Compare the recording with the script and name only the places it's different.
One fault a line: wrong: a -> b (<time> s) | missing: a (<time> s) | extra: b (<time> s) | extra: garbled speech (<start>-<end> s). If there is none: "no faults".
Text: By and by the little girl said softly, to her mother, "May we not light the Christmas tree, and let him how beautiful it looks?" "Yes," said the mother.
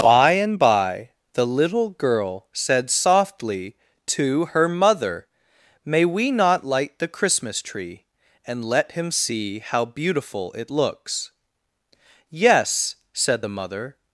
extra: see (9.1 s)